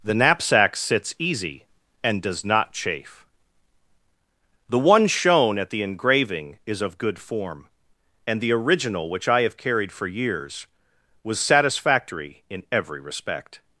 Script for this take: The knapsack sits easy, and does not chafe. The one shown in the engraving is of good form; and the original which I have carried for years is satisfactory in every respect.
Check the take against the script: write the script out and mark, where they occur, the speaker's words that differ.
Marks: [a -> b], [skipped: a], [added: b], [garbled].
The knapsack sits easy, and does not chafe. The one shown [in -> at] the engraving is of good form; and the original which I have carried for years [is -> was] satisfactory in every respect.